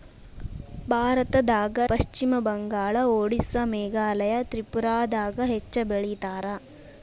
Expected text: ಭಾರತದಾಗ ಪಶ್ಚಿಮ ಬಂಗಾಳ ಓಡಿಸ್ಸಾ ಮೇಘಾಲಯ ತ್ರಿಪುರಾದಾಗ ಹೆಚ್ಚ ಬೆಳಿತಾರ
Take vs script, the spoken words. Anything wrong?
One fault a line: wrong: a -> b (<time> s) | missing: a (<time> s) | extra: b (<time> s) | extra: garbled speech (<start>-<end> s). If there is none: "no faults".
no faults